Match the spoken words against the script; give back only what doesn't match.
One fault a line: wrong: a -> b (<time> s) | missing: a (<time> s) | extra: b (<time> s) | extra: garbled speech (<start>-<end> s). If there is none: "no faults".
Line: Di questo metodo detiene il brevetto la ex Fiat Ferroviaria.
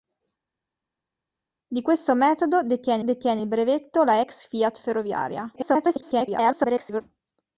extra: detiene (3.0 s)
extra: garbled speech (5.6-7.0 s)